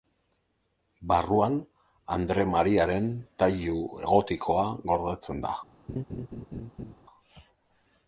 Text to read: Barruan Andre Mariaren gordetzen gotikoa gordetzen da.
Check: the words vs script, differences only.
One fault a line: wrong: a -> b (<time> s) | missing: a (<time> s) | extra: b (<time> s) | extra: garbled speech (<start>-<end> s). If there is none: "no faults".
wrong: gordetzen -> tailu (3.4 s)